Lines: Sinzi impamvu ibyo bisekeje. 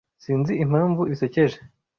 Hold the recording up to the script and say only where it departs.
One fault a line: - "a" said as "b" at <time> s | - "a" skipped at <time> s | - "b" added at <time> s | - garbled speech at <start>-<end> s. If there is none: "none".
- "ibyo" skipped at 1.0 s